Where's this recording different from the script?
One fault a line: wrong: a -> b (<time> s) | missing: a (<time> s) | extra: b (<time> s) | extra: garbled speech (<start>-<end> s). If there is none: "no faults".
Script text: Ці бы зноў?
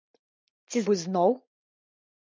no faults